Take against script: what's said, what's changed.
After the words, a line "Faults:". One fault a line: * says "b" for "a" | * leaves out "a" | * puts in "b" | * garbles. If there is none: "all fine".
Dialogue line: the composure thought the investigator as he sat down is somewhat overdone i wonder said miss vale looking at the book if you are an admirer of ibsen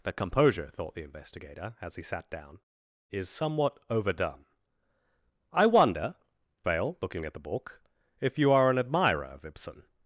the composure thought the investigator as he sat down is somewhat overdone i wonder vale looking at the book if you are an admirer of ibsen
Faults:
* leaves out "said miss"